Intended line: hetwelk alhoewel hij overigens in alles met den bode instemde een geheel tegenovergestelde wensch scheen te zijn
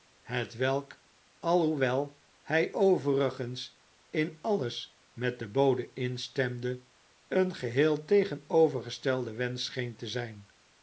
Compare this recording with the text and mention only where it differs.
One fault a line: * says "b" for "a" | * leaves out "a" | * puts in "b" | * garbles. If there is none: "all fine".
all fine